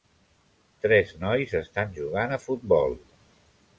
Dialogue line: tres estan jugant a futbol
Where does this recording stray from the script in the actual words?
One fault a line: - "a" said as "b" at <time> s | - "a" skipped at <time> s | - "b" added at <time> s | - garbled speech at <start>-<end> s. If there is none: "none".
- "nois" added at 1.2 s